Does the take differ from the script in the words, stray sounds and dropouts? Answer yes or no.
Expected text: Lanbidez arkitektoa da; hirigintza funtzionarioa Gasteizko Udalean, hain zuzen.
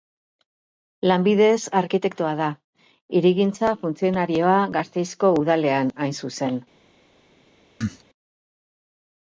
yes